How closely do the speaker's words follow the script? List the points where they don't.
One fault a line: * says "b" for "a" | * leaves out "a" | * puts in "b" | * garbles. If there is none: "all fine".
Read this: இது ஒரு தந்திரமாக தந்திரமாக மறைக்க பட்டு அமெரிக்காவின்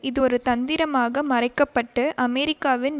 * leaves out "தந்திரமாக"